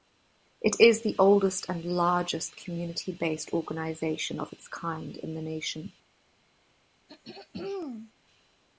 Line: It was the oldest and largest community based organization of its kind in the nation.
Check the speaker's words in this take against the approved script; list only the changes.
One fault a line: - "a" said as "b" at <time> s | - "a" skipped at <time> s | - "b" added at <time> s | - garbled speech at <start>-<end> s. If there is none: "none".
- "was" said as "is" at 0.8 s